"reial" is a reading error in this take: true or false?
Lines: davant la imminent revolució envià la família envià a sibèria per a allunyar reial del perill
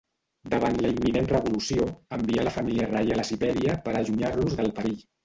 true